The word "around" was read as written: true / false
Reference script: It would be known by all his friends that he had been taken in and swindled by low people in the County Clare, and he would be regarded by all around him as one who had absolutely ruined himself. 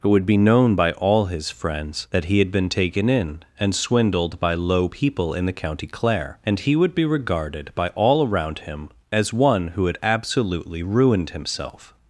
true